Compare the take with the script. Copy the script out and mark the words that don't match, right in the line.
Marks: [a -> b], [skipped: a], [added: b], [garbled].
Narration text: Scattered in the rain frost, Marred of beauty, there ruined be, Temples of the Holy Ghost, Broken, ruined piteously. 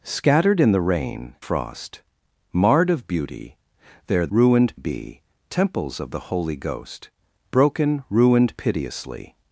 Scattered in the rain frost, Marred of beauty, there ruined be, Temples of the Holy Ghost, Broken, ruined piteously.